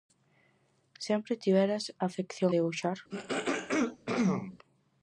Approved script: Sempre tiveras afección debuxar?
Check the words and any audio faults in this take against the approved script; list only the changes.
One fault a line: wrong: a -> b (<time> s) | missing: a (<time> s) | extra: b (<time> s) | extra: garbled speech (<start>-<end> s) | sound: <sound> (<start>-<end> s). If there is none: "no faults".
sound: throat clearing (3.1-4.6 s)